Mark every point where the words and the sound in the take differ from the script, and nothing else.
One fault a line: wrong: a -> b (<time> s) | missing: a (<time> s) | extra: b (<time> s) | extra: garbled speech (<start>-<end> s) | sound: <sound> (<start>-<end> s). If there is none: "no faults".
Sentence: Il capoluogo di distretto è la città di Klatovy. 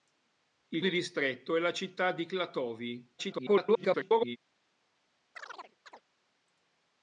missing: capoluogo (0.8 s)
extra: garbled speech (3.2-4.4 s)
sound: chirp (5.4-6.0 s)